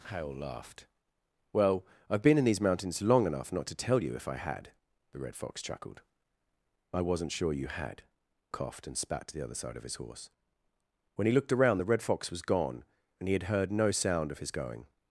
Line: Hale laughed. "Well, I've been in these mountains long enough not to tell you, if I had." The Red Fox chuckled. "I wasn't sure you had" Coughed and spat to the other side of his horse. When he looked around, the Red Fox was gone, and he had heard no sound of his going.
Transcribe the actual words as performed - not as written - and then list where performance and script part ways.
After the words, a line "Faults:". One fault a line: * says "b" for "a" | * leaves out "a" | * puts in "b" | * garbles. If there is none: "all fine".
Hale laughed. "Well, I've been in these mountains long enough not to tell you, if I had." The Red Fox chuckled. "I wasn't sure you had" Coughed and spat to the other side of his horse. When he looked around, the Red Fox was gone, and he had heard no sound of his going.
Faults:
all fine